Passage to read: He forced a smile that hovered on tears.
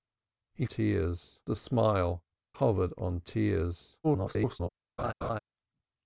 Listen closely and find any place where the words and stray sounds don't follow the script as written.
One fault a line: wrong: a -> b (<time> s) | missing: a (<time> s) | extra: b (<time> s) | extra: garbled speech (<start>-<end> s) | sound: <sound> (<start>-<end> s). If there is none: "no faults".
wrong: forced -> tears (0.6 s)
missing: that (2.2 s)
extra: garbled speech (4.0-4.7 s)
sound: laugh (5.0-5.4 s)